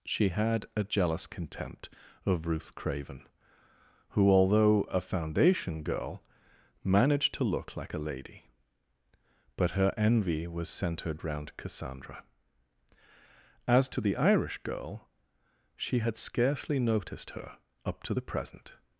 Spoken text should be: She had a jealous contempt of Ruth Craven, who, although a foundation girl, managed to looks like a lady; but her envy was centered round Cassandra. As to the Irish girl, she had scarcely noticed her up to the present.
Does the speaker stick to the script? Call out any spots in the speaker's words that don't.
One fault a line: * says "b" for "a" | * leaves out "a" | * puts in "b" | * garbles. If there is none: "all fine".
* says "look" for "looks"